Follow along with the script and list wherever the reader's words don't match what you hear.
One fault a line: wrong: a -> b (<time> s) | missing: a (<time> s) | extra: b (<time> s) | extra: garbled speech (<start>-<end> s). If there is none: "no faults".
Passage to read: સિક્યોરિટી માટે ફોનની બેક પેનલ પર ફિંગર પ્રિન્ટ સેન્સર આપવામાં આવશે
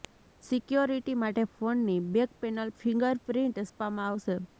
missing: પર (2.7 s)
missing: સેન્સર (3.6 s)